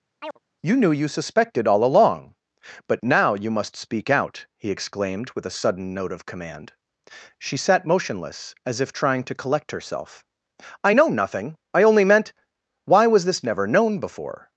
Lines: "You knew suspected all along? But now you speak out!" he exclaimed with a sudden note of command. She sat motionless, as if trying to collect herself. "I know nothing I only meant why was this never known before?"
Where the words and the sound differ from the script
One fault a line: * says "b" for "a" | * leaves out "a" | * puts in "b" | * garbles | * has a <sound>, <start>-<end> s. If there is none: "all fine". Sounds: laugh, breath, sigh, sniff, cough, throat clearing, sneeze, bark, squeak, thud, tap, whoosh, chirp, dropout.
* has a chirp, 0.2-0.4 s
* puts in "you"
* puts in "must"